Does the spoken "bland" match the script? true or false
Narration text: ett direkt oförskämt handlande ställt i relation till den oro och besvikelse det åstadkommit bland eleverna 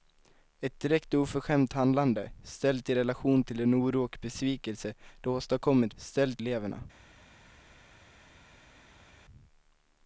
false